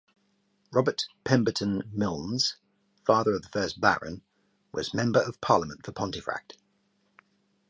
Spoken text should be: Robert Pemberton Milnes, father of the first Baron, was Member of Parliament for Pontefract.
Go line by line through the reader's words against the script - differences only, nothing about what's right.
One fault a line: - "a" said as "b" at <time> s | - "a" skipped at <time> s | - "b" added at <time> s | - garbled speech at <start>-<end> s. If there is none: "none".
none